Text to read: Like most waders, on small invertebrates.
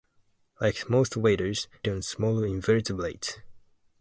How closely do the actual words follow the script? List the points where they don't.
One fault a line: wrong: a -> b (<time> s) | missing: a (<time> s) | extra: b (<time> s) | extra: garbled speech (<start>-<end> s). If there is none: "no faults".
no faults